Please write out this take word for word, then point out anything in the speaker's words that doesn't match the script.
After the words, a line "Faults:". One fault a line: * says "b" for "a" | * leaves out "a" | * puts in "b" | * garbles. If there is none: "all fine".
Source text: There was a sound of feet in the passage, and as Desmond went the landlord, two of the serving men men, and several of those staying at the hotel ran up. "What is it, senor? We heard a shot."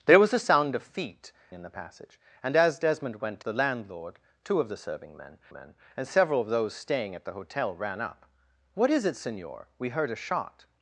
There was a sound of feet in the passage, and as Desmond went the landlord, two of the serving men men, and several of those staying at the hotel ran up. "What is it, senor? We heard a shot."
Faults:
all fine